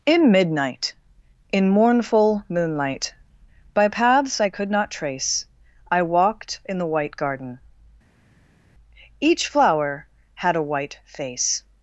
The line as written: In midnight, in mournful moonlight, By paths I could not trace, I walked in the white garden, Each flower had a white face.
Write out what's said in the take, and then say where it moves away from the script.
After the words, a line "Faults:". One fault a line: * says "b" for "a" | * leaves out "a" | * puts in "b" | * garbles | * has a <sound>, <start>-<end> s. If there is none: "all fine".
In midnight, in mournful moonlight, By paths I could not trace, I walked in the white garden, Each flower had a white face.
Faults:
all fine